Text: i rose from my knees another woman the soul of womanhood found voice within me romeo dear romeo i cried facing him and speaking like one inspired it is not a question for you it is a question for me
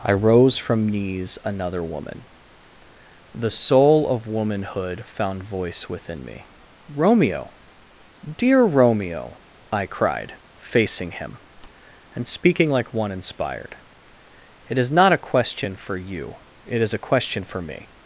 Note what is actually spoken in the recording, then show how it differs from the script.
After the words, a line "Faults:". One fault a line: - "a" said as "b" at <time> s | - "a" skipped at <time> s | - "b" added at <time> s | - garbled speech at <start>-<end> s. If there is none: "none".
i rose from knees another woman the soul of womanhood found voice within me romeo dear romeo i cried facing him and speaking like one inspired it is not a question for you it is a question for me
Faults:
- "my" skipped at 0.9 s